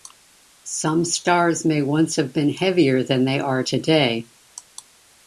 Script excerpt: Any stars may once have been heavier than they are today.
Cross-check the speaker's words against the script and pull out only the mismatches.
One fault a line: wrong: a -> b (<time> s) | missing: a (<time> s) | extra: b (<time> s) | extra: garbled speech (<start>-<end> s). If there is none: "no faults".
wrong: Any -> Some (0.6 s)